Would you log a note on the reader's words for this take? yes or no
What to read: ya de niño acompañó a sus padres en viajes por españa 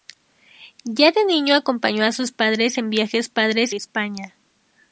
yes